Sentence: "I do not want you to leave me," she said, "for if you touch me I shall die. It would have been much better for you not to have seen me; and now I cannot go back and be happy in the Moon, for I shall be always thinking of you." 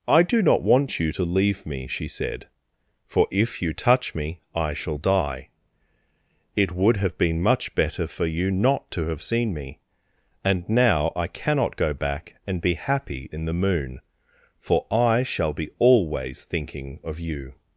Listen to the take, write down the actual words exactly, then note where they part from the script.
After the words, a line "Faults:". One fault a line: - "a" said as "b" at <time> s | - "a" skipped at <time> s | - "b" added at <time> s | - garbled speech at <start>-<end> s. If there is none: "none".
"I do not want you to leave me," she said, "for if you touch me I shall die. It would have been much better for you not to have seen me; and now I cannot go back and be happy in the Moon, for I shall be always thinking of you."
Faults:
none